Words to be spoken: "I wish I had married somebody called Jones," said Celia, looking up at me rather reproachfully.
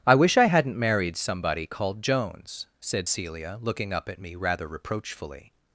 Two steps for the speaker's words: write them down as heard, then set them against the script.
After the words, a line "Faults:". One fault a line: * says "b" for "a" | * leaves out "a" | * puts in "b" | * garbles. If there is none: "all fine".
"I wish I hadn't married somebody called Jones," said Celia, looking up at me rather reproachfully.
Faults:
* says "hadn't" for "had"